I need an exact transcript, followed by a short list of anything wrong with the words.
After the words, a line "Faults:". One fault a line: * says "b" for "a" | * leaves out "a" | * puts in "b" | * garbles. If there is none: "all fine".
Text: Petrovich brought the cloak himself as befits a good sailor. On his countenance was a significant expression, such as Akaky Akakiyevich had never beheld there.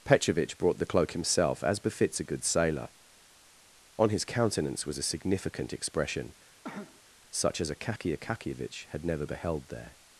Petrovich brought the cloak himself as befits a good sailor. On his countenance was a significant expression, such as Akaky Akakiyevich had never beheld there.
Faults:
all fine